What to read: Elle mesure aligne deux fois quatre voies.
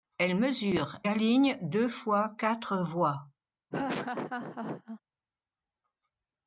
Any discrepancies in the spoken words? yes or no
no